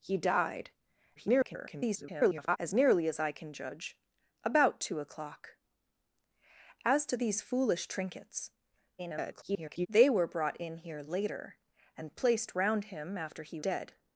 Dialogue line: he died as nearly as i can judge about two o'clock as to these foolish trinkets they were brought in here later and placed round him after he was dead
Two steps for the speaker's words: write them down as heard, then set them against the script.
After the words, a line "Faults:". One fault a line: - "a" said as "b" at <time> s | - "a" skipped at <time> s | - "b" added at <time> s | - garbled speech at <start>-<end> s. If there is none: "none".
he died [garbled] as nearly as i can judge about two o'clock as to these foolish trinkets [garbled] they were brought in here later and placed round him after he dead
Faults:
- garbled speech at 1.2-2.6 s
- garbled speech at 9.0-9.9 s
- "was" skipped at 13.6 s